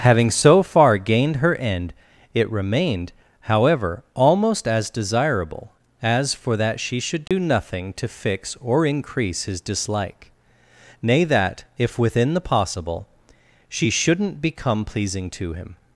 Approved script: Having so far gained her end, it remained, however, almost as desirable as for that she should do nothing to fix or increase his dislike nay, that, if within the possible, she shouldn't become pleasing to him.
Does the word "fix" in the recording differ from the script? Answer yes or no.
no